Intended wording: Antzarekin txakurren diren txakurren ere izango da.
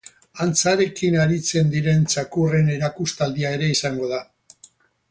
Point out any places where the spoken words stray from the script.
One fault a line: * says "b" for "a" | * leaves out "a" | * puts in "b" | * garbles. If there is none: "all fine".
* says "aritzen" for "txakurren"
* puts in "erakustaldia"